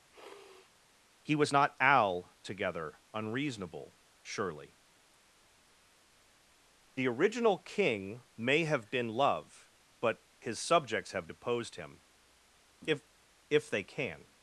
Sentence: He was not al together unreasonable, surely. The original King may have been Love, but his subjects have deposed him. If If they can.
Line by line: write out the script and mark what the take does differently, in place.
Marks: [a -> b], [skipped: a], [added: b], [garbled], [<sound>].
[sniff] He was not al together unreasonable, surely. The original King may have been Love, but his subjects have deposed him. If If they can.